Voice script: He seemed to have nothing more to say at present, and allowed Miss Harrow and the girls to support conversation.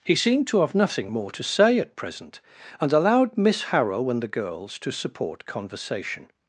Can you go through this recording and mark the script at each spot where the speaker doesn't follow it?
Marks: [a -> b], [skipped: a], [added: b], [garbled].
He seemed to have nothing more to say at present, and allowed Miss Harrow and the girls to support conversation.